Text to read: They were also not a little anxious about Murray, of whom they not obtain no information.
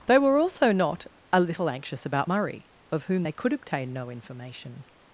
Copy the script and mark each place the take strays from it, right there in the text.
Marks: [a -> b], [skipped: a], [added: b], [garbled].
They were also not a little anxious about Murray, of whom they [not -> could] obtain no information.